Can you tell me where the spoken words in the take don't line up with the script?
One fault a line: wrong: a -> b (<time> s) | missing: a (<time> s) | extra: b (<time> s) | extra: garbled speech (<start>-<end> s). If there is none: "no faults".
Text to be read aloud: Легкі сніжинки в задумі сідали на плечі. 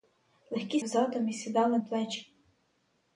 missing: сніжинки (0.8 s)
missing: на (1.8 s)